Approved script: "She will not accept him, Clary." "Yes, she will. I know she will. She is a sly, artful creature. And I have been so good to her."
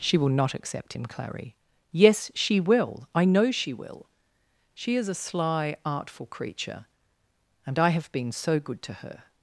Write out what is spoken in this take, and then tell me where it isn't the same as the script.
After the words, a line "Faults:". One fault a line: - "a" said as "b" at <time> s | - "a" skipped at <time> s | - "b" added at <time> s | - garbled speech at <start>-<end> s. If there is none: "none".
"She will not accept him, Clary." "Yes, she will. I know she will. She is a sly, artful creature. And I have been so good to her."
Faults:
none